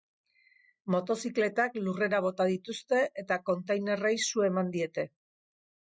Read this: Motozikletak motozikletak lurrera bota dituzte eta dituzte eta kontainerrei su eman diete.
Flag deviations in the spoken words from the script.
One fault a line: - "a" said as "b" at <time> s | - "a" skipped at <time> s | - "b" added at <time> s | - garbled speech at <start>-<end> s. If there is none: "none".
- "motozikletak" skipped at 1.8 s
- "dituzte eta" skipped at 3.4 s